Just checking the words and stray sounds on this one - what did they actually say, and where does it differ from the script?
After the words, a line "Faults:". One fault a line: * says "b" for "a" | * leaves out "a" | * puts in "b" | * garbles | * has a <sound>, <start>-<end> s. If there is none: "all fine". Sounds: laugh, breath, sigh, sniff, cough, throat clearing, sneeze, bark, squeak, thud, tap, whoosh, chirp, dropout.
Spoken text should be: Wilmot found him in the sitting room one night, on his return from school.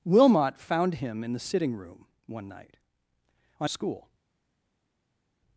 Wilmot found him in the sitting room one night, on school.
Faults:
* leaves out "his return from"